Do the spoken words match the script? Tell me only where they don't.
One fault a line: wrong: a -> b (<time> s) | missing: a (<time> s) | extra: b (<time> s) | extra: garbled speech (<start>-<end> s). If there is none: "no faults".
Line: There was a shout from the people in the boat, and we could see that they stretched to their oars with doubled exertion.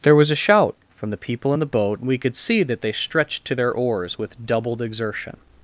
no faults